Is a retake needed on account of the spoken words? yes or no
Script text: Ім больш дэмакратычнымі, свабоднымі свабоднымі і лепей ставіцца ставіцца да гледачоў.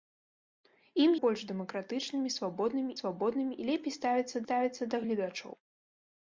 no